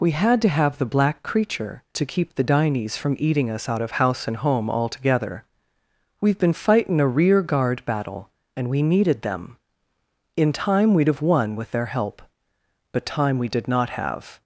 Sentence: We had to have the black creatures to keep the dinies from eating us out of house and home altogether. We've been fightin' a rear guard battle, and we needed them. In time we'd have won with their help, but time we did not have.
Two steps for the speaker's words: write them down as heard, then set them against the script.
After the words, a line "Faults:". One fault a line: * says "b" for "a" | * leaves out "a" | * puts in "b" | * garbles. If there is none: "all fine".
We had to have the black creature to keep the dinies from eating us out of house and home altogether. We've been fightin' a rear guard battle, and we needed them. In time we'd have won with their help, but time we did not have.
Faults:
* says "creature" for "creatures"